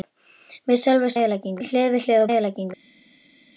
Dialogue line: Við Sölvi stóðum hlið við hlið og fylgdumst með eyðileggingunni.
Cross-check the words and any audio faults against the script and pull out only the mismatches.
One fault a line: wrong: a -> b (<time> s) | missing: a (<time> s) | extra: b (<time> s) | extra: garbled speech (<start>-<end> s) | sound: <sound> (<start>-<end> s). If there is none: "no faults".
wrong: stóðum -> eyðileggingunni (1.2 s)
missing: og fylgdumst með (2.3 s)